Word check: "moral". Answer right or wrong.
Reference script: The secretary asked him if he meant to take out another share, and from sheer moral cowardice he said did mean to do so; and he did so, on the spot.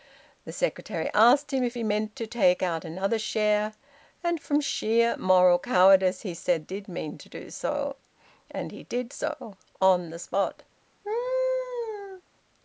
right